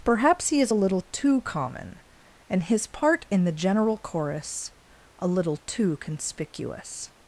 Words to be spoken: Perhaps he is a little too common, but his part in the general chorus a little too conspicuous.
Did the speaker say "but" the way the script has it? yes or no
no